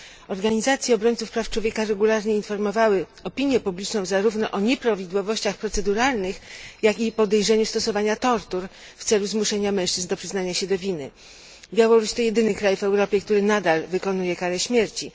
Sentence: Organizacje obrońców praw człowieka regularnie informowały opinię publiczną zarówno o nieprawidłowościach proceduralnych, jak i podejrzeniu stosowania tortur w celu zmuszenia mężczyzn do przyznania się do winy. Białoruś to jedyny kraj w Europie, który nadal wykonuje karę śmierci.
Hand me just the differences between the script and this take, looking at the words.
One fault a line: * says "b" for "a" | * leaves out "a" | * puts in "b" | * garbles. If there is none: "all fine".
all fine